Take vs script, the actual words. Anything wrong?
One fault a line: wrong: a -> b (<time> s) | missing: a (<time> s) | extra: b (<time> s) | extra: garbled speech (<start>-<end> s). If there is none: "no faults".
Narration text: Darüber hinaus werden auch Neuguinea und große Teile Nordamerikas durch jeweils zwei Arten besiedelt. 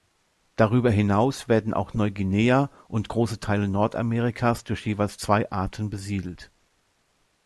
no faults